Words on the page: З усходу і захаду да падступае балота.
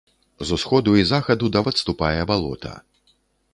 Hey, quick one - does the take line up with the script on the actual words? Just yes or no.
yes